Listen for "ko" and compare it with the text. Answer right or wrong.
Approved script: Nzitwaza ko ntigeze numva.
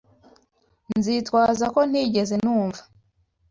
right